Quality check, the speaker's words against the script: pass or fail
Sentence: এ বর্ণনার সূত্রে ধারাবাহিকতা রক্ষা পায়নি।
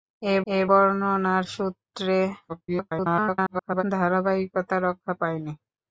fail